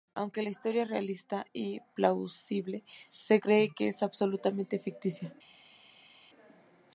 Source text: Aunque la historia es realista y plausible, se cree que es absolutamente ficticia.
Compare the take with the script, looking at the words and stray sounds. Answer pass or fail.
pass